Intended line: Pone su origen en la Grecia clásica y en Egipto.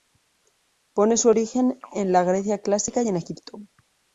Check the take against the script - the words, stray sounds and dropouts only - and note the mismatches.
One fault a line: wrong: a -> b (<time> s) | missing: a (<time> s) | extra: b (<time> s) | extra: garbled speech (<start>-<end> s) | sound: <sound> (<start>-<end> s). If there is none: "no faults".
no faults